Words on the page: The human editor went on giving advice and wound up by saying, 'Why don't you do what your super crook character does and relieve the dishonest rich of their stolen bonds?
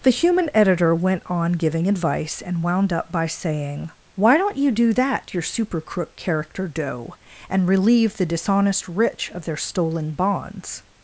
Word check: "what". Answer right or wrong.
wrong